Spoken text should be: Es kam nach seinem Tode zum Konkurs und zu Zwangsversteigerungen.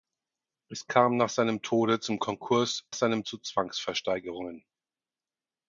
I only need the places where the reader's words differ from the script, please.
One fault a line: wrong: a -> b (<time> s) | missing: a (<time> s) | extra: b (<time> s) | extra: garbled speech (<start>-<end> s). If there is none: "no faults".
wrong: und -> seinem (2.9 s)